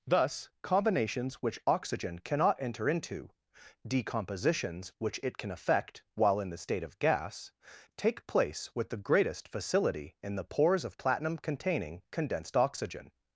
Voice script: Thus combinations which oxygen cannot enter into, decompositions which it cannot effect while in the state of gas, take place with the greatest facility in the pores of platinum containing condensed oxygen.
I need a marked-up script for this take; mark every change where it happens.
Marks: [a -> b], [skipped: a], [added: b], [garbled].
Thus combinations which oxygen cannot enter into, decompositions which it [cannot -> can] effect while in the state of gas, take place with the greatest facility in the pores of platinum containing condensed oxygen.